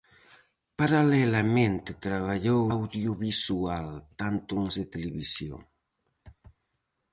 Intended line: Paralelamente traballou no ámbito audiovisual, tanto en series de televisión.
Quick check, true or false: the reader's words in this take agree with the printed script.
false